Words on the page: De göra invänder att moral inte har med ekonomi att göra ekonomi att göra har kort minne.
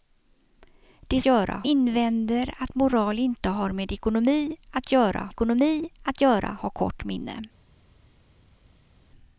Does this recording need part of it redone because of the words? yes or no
no